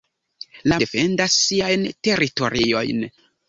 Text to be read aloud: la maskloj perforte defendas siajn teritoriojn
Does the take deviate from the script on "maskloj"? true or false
true